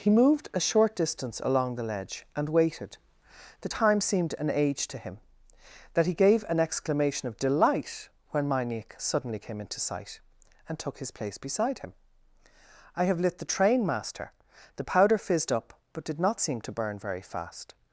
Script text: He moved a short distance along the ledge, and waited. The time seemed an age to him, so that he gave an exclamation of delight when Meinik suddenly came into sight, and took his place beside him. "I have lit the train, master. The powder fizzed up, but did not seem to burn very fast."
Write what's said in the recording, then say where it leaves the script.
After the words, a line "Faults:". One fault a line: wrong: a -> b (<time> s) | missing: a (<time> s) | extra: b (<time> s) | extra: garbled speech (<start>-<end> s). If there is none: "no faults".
He moved a short distance along the ledge, and waited. The time seemed an age to him, that he gave an exclamation of delight when Meinik suddenly came into sight, and took his place beside him. "I have lit the train, master. The powder fizzed up, but did not seem to burn very fast."
Faults:
missing: so (5.2 s)